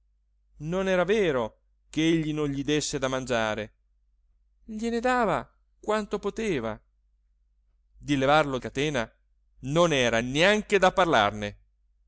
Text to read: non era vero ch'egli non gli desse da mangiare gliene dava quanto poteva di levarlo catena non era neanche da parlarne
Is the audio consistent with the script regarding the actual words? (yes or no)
yes